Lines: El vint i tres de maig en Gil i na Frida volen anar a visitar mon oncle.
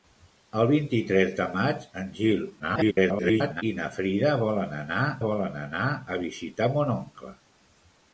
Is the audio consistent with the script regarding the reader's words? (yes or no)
no